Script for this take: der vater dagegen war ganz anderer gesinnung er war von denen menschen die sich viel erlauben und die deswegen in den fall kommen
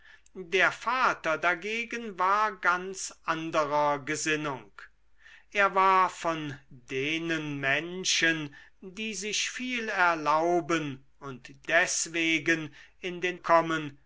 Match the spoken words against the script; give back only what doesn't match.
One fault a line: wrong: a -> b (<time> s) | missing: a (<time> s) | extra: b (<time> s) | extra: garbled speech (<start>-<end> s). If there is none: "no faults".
missing: die (11.7 s)
missing: fall (13.4 s)